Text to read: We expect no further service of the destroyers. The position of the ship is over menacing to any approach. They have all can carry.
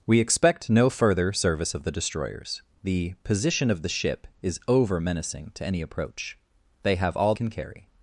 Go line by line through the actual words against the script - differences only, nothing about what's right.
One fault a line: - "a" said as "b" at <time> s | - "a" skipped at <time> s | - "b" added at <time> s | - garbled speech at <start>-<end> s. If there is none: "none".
none